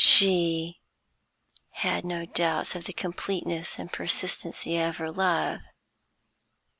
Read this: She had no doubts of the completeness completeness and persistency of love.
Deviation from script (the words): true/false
true